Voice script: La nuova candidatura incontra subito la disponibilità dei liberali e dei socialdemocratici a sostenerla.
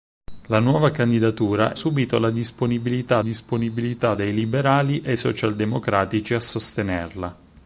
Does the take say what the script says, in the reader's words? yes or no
no